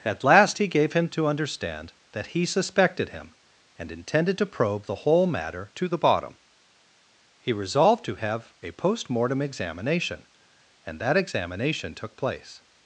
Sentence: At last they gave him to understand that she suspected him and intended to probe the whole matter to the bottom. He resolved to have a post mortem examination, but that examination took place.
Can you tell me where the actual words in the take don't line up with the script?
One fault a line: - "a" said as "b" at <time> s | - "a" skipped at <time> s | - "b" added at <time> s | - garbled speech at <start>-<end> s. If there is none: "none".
- "they" said as "he" at 0.6 s
- "she" said as "he" at 2.3 s
- "but" said as "and" at 10.8 s